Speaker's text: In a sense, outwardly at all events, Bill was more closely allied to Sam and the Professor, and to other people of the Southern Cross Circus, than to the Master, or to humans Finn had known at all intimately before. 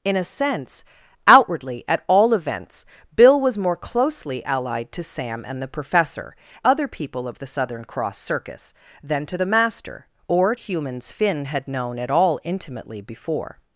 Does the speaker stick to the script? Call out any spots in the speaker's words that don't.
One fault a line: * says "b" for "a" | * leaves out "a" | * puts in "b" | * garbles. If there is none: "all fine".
* leaves out "and to"
* leaves out "to"